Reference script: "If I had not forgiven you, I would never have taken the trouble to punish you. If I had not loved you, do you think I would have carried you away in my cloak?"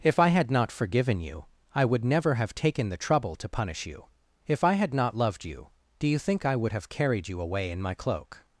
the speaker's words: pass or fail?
pass